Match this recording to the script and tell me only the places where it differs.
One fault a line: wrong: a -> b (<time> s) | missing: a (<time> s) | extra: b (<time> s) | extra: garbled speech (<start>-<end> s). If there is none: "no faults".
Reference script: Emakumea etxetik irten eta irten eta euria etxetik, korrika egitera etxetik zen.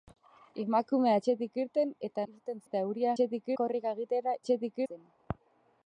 no faults